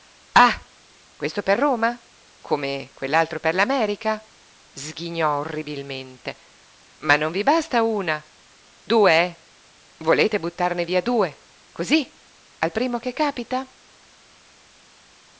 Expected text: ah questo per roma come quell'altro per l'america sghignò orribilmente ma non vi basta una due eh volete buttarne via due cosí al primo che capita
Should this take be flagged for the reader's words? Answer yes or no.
no